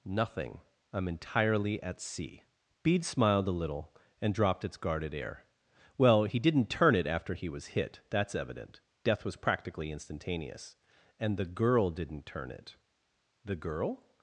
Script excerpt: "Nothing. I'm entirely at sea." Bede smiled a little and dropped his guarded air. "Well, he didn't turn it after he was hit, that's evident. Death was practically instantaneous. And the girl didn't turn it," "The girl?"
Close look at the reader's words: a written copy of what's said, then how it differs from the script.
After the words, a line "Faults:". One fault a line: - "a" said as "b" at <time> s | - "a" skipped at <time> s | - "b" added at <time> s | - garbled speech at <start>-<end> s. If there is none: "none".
"Nothing. I'm entirely at sea." Bede smiled a little and dropped its guarded air. "Well, he didn't turn it after he was hit, that's evident. Death was practically instantaneous. And the girl didn't turn it," "The girl?"
Faults:
- "his" said as "its" at 4.7 s